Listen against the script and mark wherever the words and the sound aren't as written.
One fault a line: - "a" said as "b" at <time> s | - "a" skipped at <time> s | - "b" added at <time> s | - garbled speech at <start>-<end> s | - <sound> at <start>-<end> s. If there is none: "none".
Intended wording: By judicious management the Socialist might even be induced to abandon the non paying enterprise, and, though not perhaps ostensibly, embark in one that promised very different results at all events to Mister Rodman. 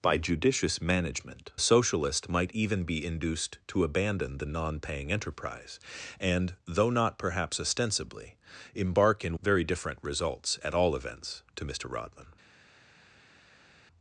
- "the" skipped at 1.5 s
- "one that promised" skipped at 9.4 s